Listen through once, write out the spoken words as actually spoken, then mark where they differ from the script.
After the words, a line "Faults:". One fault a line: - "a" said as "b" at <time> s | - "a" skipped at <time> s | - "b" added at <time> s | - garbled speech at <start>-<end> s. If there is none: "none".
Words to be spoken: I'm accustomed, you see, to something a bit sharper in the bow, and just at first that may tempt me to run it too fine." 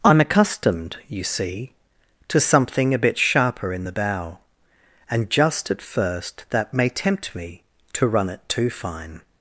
I'm accustomed, you see, to something a bit sharper in the bow, and just at first that may tempt me to run it too fine."
Faults:
none